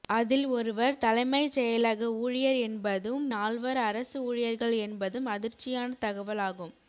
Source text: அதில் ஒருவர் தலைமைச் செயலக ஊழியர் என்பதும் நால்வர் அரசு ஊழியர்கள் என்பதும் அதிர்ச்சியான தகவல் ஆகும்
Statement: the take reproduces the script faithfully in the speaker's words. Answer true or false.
true